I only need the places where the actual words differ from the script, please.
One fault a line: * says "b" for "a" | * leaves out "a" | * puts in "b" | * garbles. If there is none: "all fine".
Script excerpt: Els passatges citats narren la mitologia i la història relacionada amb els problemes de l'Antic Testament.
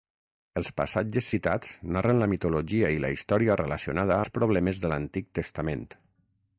* leaves out "amb"